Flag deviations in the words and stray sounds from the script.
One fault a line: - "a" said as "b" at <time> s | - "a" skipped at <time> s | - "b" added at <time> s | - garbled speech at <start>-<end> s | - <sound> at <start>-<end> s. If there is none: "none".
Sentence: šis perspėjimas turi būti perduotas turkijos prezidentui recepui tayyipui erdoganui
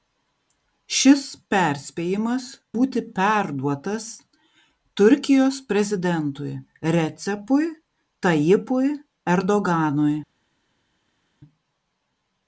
- "turi" skipped at 2.5 s